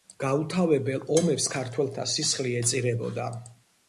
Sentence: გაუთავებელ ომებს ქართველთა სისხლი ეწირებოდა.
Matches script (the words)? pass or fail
pass